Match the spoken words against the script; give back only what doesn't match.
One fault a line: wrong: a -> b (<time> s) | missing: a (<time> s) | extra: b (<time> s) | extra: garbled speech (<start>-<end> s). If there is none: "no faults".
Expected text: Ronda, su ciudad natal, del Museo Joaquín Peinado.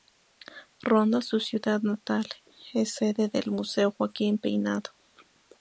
extra: es sede (2.7 s)